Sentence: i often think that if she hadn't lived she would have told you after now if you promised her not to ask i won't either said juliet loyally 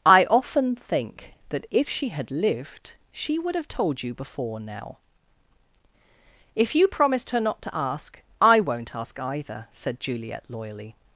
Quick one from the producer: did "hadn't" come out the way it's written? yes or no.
no